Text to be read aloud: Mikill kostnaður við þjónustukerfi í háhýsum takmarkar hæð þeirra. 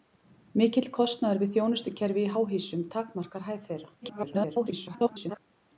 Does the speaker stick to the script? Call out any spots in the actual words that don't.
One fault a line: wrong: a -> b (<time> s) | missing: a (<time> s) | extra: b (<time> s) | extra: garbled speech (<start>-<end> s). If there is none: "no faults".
extra: garbled speech (4.0-5.4 s)